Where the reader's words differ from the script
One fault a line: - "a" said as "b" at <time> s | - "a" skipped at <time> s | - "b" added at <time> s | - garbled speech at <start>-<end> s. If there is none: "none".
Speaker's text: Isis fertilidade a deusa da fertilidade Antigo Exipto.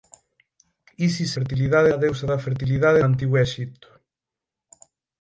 none